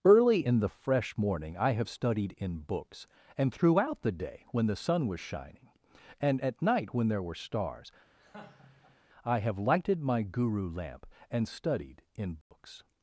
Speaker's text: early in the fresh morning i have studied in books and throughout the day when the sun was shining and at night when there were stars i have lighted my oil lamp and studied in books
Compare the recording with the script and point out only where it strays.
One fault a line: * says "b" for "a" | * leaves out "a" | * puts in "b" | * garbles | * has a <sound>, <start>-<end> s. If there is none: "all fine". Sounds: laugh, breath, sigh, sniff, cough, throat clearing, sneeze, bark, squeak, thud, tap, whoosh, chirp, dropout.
* has a laugh, 8.2-9.0 s
* says "guru" for "oil"
* has a dropout, 12.4-12.5 s